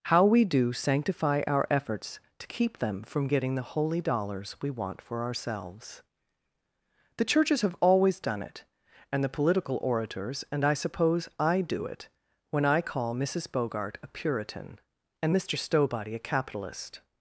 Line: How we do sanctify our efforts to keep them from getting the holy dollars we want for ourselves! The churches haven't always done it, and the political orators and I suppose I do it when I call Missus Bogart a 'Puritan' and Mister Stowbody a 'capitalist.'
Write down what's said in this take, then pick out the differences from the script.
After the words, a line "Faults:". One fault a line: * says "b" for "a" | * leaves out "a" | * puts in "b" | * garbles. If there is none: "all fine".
How we do sanctify our efforts to keep them from getting the holy dollars we want for ourselves! The churches have always done it, and the political orators and I suppose I do it when I call Missus Bogart a 'Puritan' and Mister Stowbody a 'capitalist.'
Faults:
* says "have" for "haven't"